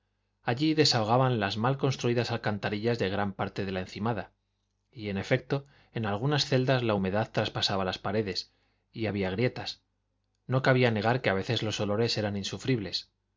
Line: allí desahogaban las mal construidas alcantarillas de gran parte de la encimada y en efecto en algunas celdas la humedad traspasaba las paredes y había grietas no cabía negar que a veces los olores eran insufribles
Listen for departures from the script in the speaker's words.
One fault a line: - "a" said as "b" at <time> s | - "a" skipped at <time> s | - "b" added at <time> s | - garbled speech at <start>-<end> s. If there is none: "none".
none